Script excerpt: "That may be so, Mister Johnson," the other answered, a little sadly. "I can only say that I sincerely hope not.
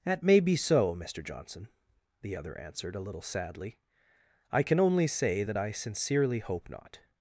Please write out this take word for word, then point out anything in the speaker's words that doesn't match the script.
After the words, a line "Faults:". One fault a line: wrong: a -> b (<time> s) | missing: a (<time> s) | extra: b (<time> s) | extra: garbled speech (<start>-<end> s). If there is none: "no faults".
"That may be so, Mister Johnson," the other answered, a little sadly. "I can only say that I sincerely hope not.
Faults:
no faults